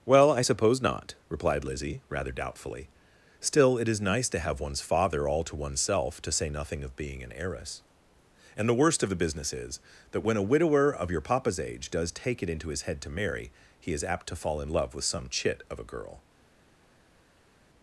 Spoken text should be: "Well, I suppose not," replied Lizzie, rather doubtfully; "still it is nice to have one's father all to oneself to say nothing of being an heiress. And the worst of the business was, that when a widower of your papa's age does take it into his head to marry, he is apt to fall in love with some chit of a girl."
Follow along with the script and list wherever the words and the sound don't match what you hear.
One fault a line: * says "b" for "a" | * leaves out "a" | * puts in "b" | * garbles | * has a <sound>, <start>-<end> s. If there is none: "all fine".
* says "is" for "was"